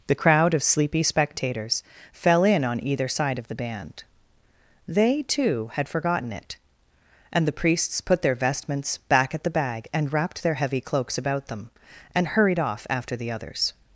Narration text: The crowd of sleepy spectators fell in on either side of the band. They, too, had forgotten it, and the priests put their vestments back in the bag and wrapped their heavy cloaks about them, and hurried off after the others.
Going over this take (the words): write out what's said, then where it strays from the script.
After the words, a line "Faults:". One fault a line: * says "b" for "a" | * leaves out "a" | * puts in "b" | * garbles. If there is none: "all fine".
The crowd of sleepy spectators fell in on either side of the band. They, too, had forgotten it, and the priests put their vestments back at the bag and wrapped their heavy cloaks about them, and hurried off after the others.
Faults:
* says "at" for "in"